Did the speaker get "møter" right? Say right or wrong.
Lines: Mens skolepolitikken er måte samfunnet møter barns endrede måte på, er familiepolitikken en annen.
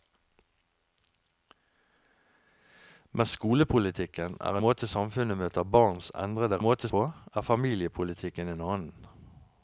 right